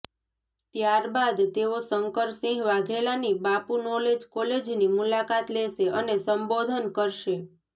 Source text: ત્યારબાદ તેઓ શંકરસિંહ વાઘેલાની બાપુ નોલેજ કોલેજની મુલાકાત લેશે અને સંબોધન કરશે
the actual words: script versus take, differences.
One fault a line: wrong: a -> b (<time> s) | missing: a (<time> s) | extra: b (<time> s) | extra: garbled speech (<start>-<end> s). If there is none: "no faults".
no faults